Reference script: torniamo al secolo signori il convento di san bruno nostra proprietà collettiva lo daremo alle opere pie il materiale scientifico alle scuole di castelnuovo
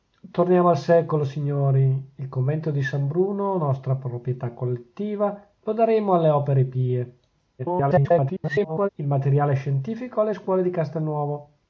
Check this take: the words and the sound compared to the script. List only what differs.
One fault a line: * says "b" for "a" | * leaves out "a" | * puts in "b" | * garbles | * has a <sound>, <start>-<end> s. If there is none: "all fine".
* garbles